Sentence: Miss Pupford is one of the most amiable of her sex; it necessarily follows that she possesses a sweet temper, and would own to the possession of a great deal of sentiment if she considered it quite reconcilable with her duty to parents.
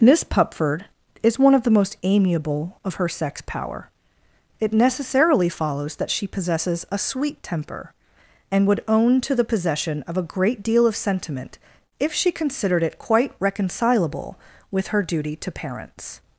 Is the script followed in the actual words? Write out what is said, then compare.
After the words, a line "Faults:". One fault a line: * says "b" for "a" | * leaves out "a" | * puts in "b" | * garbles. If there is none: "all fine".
Miss Pupford is one of the most amiable of her sex; power it necessarily follows that she possesses a sweet temper, and would own to the possession of a great deal of sentiment if she considered it quite reconcilable with her duty to parents.
Faults:
* puts in "power"